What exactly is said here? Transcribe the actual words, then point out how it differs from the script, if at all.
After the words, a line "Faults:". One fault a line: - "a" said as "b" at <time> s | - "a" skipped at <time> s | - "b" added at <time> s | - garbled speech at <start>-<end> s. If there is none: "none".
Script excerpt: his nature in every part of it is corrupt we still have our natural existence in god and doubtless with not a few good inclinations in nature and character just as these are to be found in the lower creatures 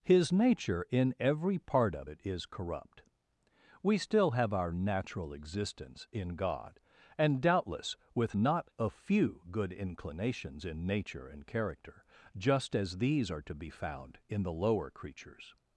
his nature in every part of it is corrupt we still have our natural existence in god and doubtless with not a few good inclinations in nature and character just as these are to be found in the lower creatures
Faults:
none